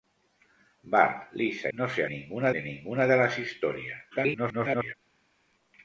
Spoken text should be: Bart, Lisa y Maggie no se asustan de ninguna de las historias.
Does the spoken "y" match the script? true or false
false